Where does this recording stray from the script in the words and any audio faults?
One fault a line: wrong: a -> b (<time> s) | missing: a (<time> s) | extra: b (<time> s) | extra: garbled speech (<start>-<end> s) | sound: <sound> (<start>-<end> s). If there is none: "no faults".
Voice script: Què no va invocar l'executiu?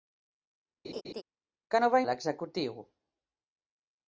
sound: laugh (0.8-1.2 s)
missing: invocar (2.0 s)